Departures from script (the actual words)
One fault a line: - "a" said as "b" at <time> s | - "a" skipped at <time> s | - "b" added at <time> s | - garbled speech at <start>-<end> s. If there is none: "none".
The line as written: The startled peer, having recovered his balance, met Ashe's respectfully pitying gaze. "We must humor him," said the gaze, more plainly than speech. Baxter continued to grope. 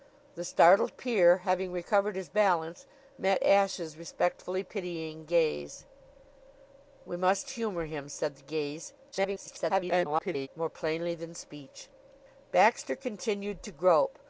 - garbled speech at 9.1-10.5 s